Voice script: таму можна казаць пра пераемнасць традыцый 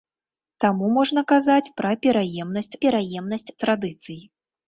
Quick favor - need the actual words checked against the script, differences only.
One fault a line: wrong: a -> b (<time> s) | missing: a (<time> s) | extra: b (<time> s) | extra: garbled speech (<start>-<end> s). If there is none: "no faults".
extra: пераемнасць (2.8 s)